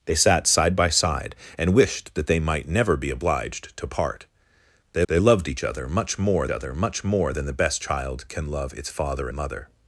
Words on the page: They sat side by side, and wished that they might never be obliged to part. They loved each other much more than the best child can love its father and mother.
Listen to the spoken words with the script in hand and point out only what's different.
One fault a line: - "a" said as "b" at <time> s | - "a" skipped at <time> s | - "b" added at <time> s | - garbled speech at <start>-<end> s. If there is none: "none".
- "they" added at 5.1 s
- "other much more" added at 6.5 s
- "and" skipped at 9.3 s